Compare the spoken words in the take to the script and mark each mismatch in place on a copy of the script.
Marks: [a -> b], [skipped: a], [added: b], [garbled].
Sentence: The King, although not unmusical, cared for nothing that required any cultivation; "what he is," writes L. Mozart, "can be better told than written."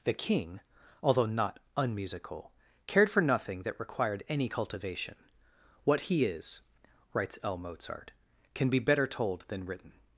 The King, although not unmusical, cared for nothing that required any cultivation; "what he is," writes L. Mozart, "can be better told than written."